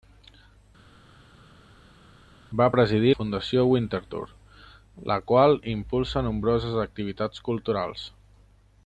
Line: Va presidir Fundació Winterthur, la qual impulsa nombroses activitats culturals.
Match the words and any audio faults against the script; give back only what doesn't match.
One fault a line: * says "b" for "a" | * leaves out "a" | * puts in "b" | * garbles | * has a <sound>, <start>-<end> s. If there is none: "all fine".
all fine